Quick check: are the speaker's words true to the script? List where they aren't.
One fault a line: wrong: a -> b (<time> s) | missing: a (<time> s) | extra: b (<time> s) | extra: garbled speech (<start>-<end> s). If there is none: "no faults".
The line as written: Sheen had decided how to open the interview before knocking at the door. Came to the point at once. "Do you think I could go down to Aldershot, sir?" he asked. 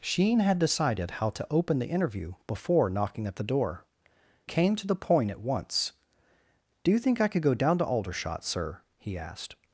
no faults